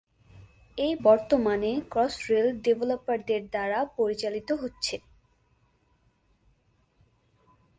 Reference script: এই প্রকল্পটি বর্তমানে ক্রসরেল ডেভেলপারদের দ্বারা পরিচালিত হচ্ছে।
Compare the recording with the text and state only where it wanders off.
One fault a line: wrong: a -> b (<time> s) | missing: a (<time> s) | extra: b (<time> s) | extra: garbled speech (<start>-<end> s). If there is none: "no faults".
missing: প্রকল্পটি (0.9 s)